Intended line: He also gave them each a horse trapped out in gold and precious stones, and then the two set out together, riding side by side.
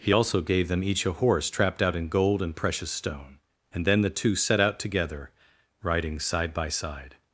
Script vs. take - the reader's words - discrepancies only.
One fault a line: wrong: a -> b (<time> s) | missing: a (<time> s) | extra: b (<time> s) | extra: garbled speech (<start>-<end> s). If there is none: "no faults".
wrong: stones -> stone (2.9 s)